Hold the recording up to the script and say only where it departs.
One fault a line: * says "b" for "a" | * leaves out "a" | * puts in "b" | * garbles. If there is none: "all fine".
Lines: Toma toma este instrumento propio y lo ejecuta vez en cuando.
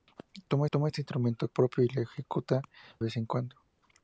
all fine